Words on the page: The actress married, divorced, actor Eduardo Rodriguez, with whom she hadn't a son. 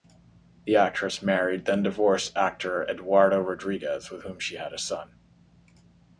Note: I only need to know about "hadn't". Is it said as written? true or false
false